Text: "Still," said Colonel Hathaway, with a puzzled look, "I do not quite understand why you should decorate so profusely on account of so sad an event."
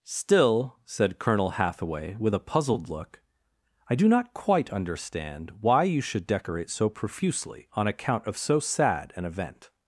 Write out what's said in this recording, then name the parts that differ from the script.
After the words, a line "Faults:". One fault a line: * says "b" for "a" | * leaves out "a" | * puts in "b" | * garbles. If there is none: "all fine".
"Still," said Colonel Hathaway, with a puzzled look, "I do not quite understand why you should decorate so profusely on account of so sad an event."
Faults:
all fine